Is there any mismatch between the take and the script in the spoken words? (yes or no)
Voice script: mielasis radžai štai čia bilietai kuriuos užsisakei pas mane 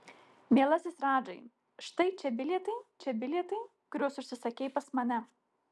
yes